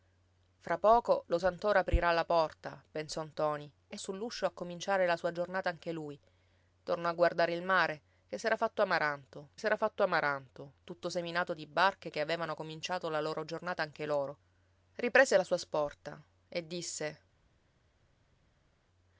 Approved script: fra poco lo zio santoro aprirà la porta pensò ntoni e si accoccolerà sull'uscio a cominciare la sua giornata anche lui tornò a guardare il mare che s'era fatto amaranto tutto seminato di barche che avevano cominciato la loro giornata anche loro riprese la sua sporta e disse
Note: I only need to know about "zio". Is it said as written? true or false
false